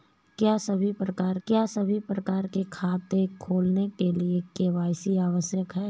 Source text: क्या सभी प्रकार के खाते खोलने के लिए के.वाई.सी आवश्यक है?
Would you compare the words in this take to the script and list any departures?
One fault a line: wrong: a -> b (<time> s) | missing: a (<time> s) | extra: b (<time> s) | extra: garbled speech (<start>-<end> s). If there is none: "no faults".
extra: क्या सभी प्रकार (1.5 s)